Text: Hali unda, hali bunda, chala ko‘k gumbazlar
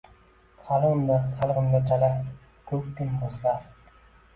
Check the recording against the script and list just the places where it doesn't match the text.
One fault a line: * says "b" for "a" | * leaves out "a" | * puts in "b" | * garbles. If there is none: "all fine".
all fine